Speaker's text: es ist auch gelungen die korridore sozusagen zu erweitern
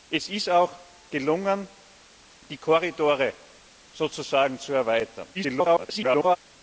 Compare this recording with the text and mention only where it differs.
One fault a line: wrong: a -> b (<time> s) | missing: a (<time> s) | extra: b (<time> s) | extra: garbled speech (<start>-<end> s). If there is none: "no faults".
extra: garbled speech (5.3-6.4 s)